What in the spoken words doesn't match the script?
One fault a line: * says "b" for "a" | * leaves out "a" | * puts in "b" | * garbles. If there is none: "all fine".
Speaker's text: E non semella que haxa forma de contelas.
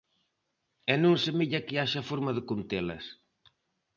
all fine